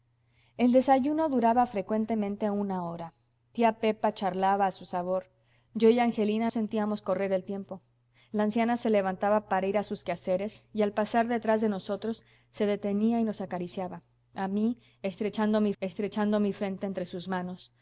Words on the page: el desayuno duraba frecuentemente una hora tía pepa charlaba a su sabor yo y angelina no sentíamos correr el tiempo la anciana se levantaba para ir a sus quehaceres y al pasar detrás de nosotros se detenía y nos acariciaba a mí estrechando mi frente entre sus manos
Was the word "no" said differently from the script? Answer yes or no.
yes